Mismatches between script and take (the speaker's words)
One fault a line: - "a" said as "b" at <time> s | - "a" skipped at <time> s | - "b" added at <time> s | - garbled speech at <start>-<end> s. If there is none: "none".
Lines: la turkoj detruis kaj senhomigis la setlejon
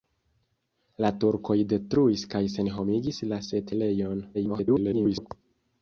- garbled speech at 4.3-5.3 s